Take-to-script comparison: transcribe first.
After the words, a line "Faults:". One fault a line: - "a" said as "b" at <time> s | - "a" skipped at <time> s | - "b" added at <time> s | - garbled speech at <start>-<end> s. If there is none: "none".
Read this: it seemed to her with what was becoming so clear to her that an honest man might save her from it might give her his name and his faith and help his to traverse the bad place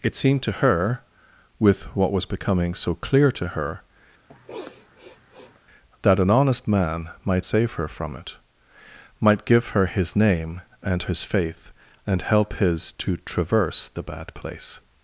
it seemed to her with what was becoming so clear to her that an honest man might save her from it might give her his name and his faith and help his to traverse the bad place
Faults:
none